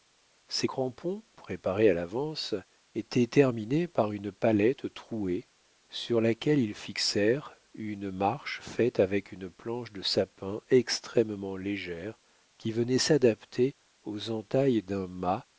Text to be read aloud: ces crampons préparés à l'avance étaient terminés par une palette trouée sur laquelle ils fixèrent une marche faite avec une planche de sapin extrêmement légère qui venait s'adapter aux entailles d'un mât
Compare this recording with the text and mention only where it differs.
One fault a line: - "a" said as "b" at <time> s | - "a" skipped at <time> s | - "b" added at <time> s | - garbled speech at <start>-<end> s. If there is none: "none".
none